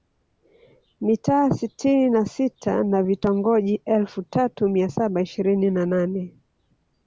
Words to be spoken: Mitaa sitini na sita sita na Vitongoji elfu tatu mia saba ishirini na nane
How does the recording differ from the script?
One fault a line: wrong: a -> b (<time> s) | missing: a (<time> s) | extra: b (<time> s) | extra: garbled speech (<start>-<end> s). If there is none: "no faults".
missing: sita (2.8 s)